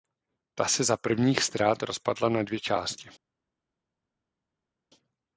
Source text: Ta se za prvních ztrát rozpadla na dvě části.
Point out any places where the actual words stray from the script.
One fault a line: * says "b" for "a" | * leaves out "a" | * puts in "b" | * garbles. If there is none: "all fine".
all fine